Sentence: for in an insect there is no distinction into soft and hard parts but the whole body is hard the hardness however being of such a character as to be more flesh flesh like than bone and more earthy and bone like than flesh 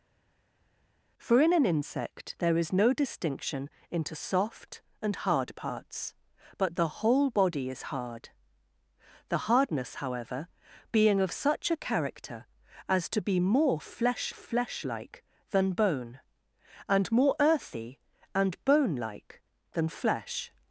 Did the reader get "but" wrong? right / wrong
right